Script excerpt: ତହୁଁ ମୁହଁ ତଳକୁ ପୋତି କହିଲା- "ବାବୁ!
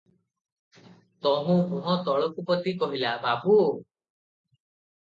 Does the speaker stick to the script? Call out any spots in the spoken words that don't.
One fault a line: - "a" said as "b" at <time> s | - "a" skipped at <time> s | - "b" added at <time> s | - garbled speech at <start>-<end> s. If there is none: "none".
none